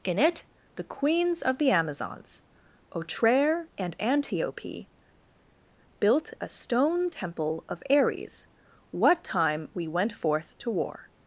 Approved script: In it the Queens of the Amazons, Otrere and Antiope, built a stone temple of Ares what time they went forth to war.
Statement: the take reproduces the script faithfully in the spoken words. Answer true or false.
false